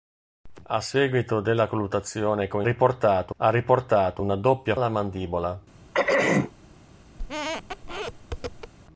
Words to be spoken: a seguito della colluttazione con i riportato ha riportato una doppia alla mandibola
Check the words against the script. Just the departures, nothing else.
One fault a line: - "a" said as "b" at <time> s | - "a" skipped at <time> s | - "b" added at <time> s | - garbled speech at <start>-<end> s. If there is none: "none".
none